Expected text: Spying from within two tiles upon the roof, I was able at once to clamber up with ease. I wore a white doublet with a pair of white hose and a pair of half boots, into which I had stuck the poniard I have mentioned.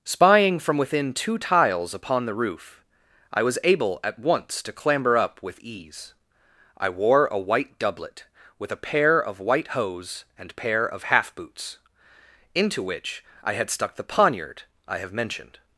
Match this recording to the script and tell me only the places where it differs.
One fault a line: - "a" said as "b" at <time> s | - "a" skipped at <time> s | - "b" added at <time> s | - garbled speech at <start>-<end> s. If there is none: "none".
- "a" skipped at 10.6 s